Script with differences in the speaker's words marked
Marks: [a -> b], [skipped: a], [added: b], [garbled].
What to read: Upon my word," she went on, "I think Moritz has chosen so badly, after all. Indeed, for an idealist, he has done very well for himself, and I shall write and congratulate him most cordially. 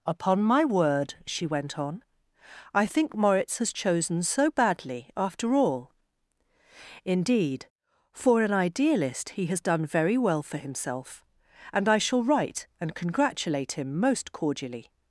Upon my word," she went on, "I think Moritz has chosen so badly, after all. Indeed, for an idealist, he has done very well for himself, and I shall write and congratulate him most cordially.